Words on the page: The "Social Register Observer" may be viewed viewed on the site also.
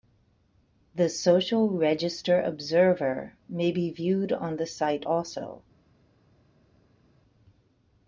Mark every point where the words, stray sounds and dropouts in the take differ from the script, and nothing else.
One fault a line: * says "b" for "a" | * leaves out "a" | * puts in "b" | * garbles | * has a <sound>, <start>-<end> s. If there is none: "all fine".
* leaves out "viewed"